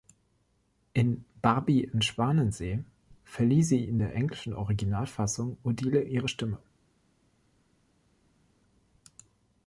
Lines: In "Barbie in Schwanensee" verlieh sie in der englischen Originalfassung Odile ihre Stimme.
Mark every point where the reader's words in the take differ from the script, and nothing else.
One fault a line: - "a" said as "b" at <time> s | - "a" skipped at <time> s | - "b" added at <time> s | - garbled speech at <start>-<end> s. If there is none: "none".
none